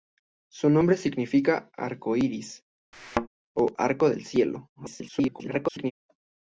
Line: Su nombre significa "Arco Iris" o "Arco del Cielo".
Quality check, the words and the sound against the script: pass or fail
fail